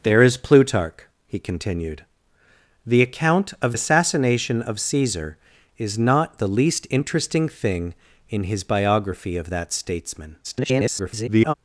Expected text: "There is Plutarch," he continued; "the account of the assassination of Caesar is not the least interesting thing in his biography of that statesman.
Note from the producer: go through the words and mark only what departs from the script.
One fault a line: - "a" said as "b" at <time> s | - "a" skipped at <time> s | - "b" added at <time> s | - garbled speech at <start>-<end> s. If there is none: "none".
- "the" skipped at 3.8 s
- garbled speech at 10.4-11.5 s